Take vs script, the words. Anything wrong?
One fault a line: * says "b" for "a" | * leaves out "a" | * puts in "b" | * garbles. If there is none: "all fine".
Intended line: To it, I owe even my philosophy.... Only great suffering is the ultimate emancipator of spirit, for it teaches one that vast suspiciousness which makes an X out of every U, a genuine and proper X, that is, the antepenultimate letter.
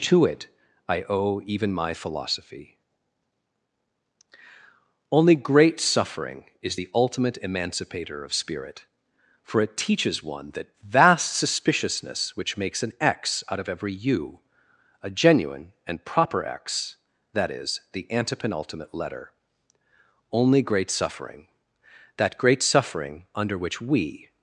* puts in "Only great suffering that great suffering under which we"